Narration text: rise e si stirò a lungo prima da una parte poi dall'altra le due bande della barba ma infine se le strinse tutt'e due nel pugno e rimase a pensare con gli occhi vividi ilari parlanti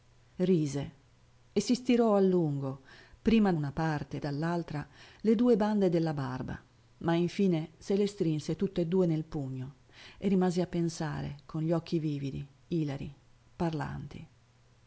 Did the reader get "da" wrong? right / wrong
wrong